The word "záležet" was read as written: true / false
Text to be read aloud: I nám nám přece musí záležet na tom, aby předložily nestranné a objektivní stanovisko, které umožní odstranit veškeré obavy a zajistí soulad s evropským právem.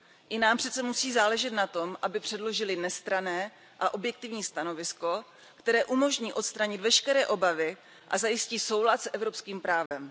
true